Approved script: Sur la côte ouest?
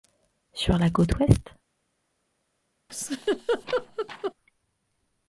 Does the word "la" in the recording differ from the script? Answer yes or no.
no